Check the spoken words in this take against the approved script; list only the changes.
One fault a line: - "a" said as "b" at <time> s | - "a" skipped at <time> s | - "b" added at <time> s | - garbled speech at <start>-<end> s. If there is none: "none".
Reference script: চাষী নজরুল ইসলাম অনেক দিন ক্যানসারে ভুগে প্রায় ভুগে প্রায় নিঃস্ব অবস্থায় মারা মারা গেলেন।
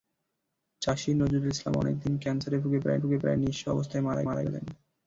none